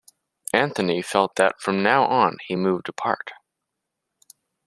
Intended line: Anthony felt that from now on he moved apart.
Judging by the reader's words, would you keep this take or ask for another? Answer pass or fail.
pass